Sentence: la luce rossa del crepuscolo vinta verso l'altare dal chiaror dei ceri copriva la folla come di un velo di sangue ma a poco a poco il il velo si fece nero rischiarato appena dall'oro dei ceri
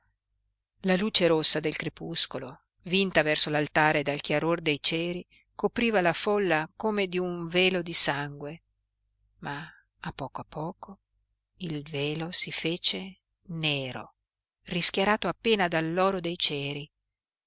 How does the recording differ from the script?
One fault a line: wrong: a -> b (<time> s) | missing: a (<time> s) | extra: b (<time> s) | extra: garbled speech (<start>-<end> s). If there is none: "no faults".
missing: il (11.8 s)